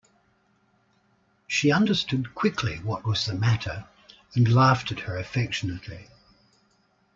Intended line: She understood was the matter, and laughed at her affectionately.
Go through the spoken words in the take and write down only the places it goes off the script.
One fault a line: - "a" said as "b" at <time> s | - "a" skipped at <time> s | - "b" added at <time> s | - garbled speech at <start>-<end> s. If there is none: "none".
- "quickly what" added at 2.3 s